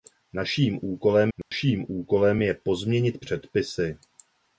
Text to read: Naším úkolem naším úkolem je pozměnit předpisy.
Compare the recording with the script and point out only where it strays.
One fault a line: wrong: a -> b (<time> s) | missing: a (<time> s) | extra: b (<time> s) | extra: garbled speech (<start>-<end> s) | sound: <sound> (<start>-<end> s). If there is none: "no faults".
sound: dropout (1.4-1.5 s)